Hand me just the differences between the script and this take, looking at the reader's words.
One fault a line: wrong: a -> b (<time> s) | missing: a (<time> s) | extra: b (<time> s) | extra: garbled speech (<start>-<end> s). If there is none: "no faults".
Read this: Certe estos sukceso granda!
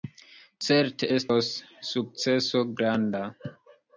no faults